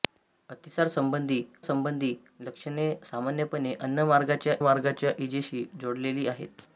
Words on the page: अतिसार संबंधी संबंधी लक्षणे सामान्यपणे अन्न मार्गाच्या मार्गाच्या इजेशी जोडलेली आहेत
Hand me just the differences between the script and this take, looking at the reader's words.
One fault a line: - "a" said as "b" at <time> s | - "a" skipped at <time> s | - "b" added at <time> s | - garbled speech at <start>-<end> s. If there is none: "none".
none